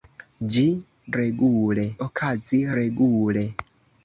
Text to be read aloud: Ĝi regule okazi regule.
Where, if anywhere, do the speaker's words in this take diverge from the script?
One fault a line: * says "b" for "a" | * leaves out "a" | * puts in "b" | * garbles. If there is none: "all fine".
all fine